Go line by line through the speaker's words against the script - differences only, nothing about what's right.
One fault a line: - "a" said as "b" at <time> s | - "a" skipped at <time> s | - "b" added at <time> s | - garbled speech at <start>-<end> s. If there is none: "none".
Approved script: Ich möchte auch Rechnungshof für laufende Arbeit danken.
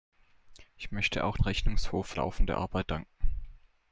none